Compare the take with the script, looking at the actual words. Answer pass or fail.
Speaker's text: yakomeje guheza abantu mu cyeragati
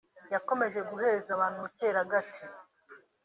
pass